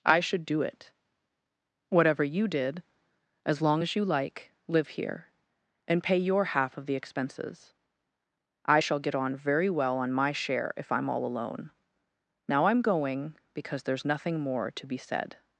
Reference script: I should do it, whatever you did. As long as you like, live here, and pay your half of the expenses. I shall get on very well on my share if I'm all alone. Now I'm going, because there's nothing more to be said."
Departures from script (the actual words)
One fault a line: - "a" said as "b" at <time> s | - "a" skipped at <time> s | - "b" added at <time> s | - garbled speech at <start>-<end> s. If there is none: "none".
none